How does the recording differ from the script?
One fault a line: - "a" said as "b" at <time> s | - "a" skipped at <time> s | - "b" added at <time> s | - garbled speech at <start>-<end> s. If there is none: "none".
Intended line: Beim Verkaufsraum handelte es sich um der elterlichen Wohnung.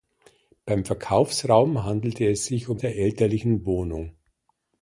none